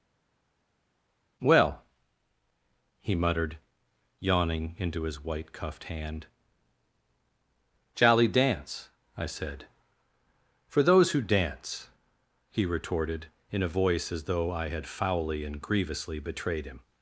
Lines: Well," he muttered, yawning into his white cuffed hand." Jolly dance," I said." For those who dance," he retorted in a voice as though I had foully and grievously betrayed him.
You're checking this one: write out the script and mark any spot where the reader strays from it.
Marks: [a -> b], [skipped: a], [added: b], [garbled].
Well," he muttered, yawning into his white cuffed hand." Jolly dance," I said." For those who dance," he retorted in a voice as though I had foully and grievously betrayed him.